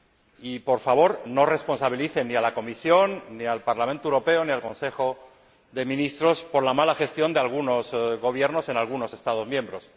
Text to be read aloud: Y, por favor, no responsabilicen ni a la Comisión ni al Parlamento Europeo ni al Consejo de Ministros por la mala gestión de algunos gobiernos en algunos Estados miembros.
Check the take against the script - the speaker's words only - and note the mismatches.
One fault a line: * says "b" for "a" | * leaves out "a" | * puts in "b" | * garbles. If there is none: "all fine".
all fine